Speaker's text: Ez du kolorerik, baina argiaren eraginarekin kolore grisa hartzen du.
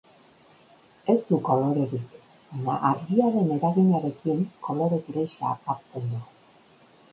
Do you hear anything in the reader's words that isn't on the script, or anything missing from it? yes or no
no